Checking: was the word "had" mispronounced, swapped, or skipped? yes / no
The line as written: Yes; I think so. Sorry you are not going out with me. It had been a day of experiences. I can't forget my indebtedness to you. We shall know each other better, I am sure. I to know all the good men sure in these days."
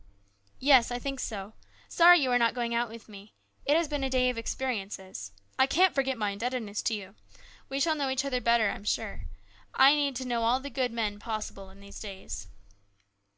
yes